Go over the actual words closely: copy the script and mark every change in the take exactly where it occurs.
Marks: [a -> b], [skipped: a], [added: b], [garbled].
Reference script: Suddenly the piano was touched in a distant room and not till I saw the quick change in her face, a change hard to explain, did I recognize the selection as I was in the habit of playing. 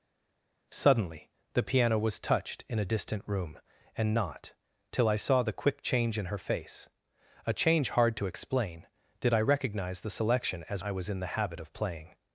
Suddenly the piano was touched in a distant room and not till I saw the quick change in her face, a change hard to explain, did I recognize the selection as I was in the habit of playing.